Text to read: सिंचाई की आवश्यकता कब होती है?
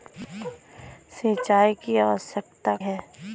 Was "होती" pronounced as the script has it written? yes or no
no